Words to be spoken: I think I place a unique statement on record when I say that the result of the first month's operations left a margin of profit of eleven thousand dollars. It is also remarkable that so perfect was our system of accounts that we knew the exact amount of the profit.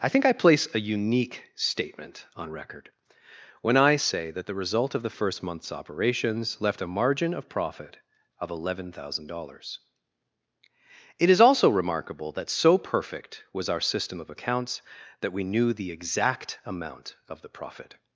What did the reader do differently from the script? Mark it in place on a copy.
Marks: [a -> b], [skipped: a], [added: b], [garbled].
I think I place a unique statement on record when I say that the result of the first month's operations left a margin of profit of eleven thousand dollars. It is also remarkable that so perfect was our system of accounts that we knew the exact amount of the profit.